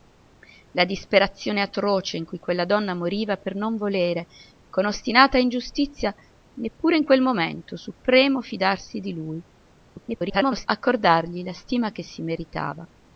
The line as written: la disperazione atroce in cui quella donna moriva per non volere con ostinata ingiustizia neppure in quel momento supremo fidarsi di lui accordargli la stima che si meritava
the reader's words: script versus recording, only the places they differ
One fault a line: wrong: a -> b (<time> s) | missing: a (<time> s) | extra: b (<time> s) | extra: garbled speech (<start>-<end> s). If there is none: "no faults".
extra: garbled speech (9.9-10.7 s)